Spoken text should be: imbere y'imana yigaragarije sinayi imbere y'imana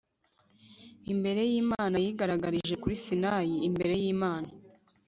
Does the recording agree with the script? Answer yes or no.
no